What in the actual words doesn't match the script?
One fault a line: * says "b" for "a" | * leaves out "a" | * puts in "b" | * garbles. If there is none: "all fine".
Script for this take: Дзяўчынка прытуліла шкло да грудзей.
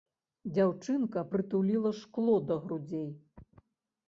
all fine